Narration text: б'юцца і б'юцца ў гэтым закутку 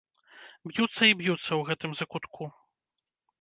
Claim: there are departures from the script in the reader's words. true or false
false